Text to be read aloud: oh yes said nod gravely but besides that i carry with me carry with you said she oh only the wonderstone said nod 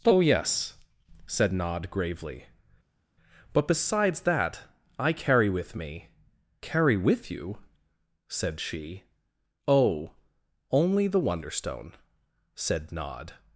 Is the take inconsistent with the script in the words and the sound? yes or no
no